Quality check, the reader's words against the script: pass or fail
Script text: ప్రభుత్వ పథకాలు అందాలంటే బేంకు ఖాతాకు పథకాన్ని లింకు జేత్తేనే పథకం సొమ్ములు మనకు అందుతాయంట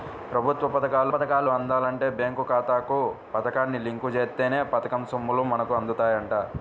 fail